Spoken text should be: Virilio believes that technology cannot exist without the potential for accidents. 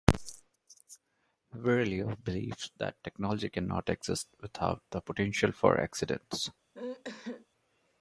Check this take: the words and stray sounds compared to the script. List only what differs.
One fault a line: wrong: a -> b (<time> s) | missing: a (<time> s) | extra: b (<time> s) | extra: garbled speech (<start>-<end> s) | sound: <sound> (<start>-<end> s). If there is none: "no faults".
sound: sneeze (6.7-7.5 s)